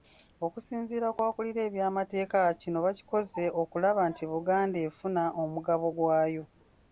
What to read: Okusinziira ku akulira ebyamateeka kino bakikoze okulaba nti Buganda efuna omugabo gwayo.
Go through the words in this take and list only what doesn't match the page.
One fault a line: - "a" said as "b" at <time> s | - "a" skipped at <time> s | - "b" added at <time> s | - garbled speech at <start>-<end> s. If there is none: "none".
none